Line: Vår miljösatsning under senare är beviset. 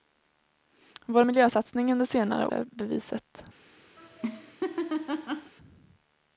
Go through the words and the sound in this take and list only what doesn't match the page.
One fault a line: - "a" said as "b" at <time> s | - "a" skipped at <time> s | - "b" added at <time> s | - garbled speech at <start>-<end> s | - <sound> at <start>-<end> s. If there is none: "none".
- laugh at 4.0-5.5 s